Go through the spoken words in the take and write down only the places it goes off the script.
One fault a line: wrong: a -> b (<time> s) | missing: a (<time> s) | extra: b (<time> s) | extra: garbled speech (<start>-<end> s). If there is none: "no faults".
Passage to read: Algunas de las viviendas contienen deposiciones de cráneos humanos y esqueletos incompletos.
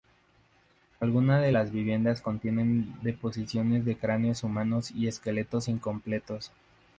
no faults